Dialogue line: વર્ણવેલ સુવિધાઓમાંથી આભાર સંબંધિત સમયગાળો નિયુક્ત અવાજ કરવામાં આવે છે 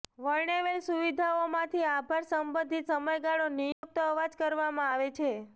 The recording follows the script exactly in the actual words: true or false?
true